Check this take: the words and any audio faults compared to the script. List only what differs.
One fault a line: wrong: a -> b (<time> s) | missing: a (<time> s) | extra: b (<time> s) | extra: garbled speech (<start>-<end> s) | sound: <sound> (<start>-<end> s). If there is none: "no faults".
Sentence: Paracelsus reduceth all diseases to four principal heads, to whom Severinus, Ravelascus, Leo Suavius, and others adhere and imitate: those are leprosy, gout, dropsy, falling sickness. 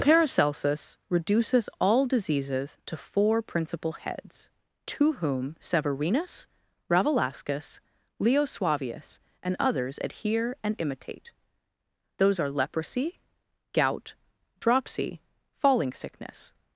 no faults